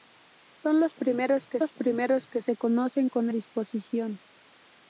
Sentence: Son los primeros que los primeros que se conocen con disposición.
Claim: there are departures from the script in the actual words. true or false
false